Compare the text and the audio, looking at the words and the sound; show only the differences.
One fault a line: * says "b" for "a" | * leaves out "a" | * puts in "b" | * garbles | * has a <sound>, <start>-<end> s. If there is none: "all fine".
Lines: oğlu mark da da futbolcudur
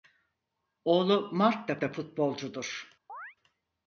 * has a chirp, 3.1-3.4 s